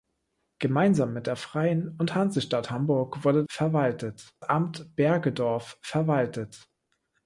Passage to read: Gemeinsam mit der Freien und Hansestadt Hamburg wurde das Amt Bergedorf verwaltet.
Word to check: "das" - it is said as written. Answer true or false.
false